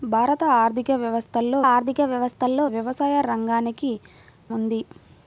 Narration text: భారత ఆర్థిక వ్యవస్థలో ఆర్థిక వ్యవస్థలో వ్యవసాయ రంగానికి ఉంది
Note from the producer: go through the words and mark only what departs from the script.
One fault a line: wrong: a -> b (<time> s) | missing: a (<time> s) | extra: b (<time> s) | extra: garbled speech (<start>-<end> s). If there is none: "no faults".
no faults